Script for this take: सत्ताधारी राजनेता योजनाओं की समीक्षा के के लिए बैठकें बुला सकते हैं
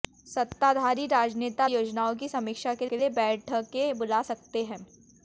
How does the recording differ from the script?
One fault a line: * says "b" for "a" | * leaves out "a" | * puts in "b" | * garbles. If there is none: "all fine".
all fine